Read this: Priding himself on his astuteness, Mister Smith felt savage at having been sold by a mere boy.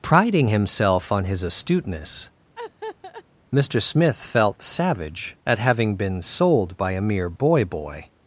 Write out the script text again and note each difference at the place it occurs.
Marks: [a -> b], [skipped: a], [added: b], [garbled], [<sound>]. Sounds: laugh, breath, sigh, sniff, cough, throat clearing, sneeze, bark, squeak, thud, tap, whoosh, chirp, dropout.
Priding himself on his astuteness, [laugh] Mister Smith felt savage at having been sold by a mere boy. [added: boy]